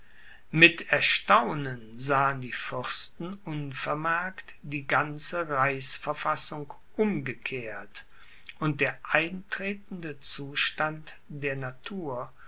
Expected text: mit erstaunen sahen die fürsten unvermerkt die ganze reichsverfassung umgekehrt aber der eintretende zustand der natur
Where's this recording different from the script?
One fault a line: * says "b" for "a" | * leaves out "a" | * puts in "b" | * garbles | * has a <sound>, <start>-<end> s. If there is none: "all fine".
* says "und" for "aber"